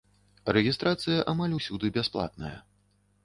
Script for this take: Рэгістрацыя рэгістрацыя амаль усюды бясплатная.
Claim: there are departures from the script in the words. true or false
true